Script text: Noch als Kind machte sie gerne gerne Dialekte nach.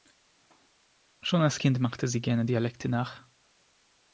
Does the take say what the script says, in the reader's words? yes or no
no